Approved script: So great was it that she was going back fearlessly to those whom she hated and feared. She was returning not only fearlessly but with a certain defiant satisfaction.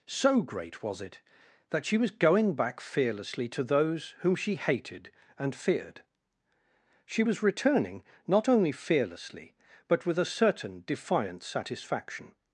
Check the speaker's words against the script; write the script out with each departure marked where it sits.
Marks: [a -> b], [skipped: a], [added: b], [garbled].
So great was it that she was going back fearlessly to those whom she hated and feared. She was returning not only fearlessly but with a certain defiant satisfaction.